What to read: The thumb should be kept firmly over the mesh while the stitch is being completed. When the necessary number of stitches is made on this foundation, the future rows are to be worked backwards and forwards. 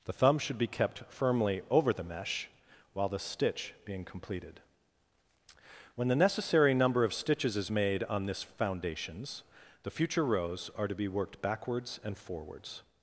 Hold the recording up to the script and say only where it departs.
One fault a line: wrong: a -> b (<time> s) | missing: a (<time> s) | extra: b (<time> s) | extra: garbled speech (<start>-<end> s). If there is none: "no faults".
missing: is (3.7 s)
wrong: foundation -> foundations (8.4 s)